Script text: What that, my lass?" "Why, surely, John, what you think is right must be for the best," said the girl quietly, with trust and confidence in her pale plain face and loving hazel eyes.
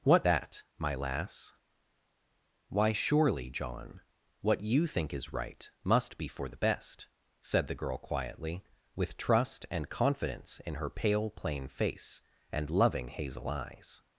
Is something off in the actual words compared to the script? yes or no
no